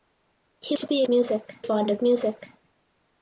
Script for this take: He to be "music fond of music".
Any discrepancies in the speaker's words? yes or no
no